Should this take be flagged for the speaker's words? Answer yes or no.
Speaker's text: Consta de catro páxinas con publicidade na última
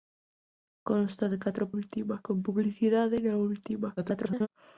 yes